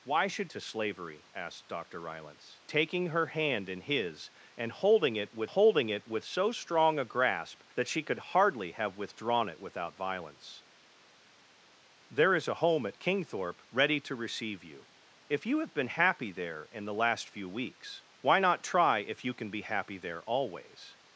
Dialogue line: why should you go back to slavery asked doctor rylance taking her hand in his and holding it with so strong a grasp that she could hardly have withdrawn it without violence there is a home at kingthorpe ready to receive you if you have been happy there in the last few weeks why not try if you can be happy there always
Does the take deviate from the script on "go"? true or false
true